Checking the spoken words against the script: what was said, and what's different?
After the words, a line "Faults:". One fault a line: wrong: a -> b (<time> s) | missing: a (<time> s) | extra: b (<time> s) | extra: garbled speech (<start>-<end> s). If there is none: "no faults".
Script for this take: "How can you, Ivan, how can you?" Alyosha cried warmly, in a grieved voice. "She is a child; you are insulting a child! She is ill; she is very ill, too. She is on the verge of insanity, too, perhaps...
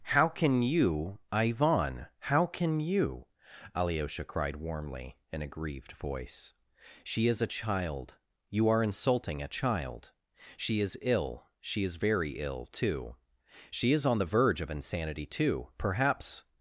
"How can you, Ivan, how can you?" Alyosha cried warmly, in a grieved voice. "She is a child; you are insulting a child! She is ill; she is very ill, too. She is on the verge of insanity, too, perhaps...
Faults:
no faults